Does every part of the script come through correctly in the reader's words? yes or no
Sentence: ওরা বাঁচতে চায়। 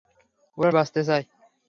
yes